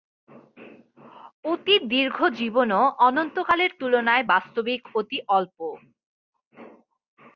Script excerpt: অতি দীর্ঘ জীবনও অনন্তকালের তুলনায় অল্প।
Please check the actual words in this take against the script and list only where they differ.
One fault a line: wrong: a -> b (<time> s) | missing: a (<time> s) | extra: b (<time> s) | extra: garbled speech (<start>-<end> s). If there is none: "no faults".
extra: বাস্তবিক অতি (4.2 s)